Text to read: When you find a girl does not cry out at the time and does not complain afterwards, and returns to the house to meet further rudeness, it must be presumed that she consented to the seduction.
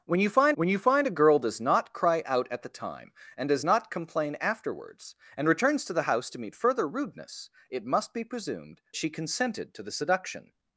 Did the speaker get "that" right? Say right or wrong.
wrong